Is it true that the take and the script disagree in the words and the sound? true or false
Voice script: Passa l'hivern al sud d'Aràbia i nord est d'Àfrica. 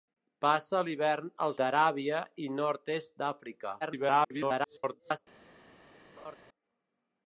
true